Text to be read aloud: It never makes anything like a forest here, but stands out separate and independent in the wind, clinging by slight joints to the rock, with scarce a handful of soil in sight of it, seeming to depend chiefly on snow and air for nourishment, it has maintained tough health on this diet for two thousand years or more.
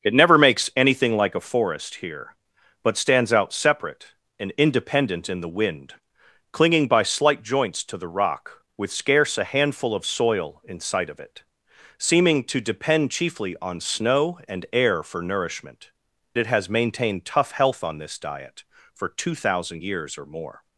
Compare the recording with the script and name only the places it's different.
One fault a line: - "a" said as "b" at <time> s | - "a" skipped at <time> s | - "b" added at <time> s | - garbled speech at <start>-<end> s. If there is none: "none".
none